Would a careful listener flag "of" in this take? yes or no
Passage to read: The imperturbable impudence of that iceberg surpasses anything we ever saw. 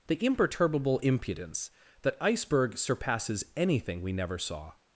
yes